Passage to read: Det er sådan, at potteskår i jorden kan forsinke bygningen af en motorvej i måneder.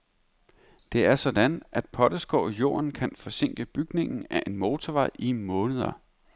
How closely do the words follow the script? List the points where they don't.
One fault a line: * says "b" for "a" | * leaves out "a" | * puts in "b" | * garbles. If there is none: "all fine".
all fine